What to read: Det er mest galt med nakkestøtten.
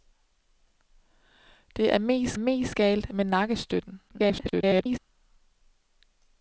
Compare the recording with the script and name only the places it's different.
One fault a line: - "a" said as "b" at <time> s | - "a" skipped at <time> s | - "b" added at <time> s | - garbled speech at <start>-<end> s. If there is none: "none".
- "mest" added at 2.4 s
- garbled speech at 4.1-5.0 s